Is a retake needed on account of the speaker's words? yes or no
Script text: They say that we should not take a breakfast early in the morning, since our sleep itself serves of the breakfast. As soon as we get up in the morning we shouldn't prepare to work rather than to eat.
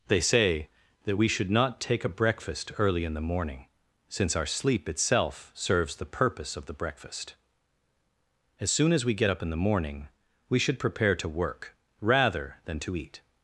yes